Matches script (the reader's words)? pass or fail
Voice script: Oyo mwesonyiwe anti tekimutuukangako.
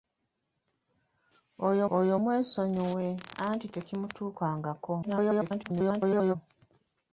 fail